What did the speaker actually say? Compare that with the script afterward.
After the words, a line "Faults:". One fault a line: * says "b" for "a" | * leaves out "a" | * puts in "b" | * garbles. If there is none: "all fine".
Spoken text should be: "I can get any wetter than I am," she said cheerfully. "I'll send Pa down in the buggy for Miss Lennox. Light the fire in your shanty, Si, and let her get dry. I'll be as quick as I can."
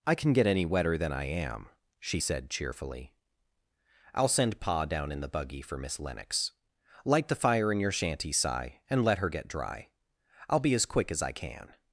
"I can get any wetter than I am," she said cheerfully. "I'll send Pa down in the buggy for Miss Lennox. Light the fire in your shanty, Si, and let her get dry. I'll be as quick as I can."
Faults:
all fine